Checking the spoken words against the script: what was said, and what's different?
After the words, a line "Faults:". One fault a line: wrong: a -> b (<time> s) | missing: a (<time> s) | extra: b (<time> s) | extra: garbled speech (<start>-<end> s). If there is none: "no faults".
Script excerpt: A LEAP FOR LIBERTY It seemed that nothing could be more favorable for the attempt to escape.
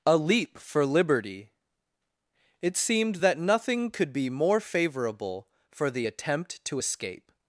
A LEAP FOR LIBERTY It seemed that nothing could be more favorable for the attempt to escape.
Faults:
no faults